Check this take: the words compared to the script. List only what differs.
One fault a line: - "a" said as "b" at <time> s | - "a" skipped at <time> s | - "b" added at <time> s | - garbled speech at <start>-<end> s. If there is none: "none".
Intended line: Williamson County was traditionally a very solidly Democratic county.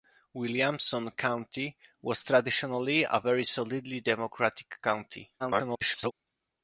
- garbled speech at 5.4-6.1 s